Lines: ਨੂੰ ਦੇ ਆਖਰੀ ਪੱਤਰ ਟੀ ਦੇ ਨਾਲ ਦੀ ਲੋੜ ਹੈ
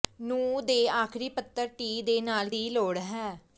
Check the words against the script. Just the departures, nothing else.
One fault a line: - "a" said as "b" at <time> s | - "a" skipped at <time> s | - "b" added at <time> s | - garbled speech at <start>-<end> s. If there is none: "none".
none